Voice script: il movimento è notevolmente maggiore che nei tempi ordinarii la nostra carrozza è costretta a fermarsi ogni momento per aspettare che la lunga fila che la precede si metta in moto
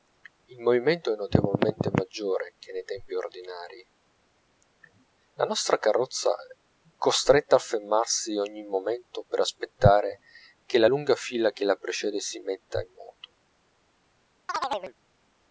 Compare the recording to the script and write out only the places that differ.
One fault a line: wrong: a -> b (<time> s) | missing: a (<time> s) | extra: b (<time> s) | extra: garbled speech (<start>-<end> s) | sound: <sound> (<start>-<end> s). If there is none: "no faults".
sound: chirp (14.5-14.9 s)